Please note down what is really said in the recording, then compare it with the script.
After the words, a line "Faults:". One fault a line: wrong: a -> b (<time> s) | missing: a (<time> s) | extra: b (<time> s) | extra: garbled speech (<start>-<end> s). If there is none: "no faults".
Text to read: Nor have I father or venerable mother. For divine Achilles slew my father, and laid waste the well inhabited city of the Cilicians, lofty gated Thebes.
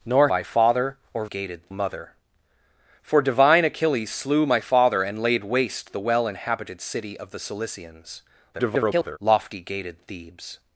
Nor I father or gated mother. For divine Achilles slew my father, and laid waste the well inhabited city of the Cilicians, [garbled] lofty gated Thebes.
Faults:
missing: have (0.3 s)
wrong: venerable -> gated (1.2 s)
extra: garbled speech (8.5-9.2 s)